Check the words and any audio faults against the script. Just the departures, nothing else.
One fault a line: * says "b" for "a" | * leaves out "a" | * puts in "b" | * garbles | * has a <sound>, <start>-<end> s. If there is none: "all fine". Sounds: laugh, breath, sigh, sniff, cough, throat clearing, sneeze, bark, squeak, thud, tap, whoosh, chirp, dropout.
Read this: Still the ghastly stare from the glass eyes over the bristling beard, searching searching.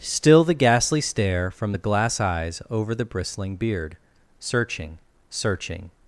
all fine